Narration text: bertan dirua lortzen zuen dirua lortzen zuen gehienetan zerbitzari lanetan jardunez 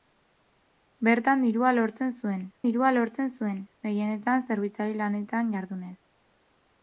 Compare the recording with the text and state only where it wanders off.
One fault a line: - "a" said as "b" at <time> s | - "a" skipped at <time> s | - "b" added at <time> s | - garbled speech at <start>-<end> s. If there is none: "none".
none